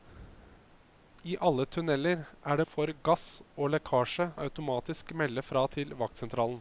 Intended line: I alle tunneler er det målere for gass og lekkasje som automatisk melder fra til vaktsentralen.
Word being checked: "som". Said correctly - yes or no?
no